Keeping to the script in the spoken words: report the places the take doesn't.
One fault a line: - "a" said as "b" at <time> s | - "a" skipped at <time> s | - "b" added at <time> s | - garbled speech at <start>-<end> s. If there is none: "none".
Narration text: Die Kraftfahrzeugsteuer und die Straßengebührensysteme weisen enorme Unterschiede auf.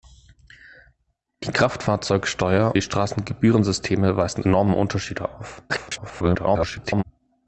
- "und" skipped at 2.8 s
- garbled speech at 5.7-7.0 s